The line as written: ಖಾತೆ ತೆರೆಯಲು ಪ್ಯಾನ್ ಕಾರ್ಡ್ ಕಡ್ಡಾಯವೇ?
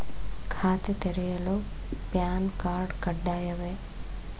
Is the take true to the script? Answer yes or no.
yes